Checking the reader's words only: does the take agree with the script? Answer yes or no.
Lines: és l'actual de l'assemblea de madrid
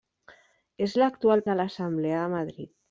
yes